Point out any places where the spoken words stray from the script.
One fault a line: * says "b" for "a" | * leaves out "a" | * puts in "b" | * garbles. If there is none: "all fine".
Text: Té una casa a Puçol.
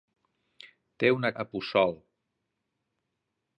* leaves out "casa"